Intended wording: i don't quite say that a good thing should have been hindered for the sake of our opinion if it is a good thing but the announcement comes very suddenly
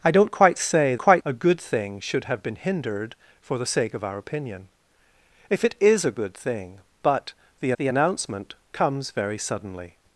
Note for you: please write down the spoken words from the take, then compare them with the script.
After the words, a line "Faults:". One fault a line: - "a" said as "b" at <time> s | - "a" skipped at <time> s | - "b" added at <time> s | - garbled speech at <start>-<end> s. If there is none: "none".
i don't quite say quite a good thing should have been hindered for the sake of our opinion if it is a good thing but the the announcement comes very suddenly
Faults:
- "that" said as "quite" at 1.0 s
- "the" added at 7.8 s